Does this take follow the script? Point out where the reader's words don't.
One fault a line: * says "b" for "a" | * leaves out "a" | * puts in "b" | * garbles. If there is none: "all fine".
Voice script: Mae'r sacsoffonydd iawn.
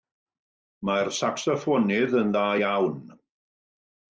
* puts in "yn dda"